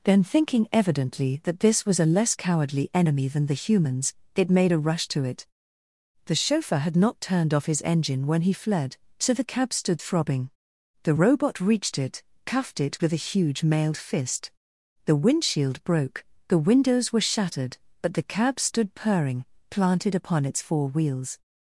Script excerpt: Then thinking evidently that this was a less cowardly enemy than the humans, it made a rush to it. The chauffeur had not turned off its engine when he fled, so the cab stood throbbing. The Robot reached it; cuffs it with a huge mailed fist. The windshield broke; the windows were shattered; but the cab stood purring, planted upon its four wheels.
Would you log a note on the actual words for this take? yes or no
yes